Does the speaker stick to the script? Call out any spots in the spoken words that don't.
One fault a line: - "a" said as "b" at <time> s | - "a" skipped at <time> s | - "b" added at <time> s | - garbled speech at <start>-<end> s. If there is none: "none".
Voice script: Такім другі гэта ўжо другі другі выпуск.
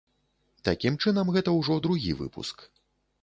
- "другі" said as "чынам" at 1.0 s
- "другі" skipped at 2.1 s